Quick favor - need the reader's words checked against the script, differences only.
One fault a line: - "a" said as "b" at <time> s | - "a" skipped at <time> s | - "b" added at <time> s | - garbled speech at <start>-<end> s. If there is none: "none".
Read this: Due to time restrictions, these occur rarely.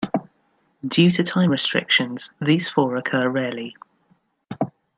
- "four" added at 2.7 s